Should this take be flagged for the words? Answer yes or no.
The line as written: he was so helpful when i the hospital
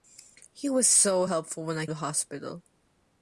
no